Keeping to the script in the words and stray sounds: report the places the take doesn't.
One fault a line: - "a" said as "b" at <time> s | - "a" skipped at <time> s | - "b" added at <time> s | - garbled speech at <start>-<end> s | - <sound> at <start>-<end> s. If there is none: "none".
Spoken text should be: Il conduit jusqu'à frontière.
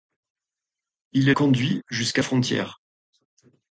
none